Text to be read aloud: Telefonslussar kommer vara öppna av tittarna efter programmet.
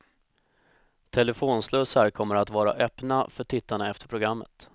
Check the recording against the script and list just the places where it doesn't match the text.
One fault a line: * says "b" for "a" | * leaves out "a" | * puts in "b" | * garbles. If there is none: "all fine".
* puts in "att"
* says "för" for "av"